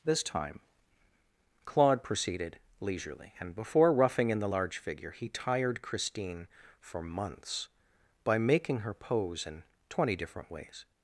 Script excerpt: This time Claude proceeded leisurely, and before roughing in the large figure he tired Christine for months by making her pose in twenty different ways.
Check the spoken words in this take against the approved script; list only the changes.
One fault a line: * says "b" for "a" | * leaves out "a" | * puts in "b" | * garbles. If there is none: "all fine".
all fine